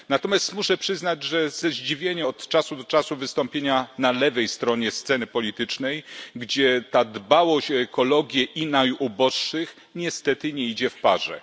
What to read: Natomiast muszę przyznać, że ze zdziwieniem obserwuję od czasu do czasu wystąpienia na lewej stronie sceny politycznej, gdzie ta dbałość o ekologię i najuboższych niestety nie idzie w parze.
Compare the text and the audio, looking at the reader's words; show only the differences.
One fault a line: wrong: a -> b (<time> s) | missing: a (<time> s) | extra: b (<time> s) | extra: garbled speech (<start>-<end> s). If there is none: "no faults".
missing: obserwuję (2.3 s)